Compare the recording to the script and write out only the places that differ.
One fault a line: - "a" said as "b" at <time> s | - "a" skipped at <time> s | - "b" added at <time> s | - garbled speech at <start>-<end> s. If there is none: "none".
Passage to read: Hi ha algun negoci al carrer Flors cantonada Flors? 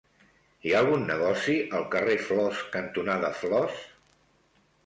none